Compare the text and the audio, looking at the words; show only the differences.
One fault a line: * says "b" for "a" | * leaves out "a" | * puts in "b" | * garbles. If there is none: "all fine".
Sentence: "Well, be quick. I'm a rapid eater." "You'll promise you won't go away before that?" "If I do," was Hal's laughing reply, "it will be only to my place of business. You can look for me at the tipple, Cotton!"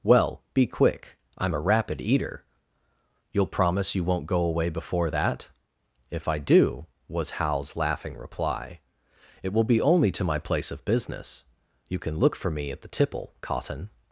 all fine